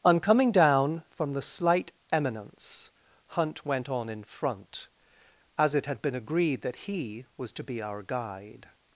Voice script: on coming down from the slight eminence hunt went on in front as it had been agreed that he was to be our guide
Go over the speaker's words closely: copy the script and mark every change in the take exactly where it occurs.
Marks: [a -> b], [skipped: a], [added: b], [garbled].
on coming down from the slight eminence hunt went on in front as it had been agreed that he was to be our guide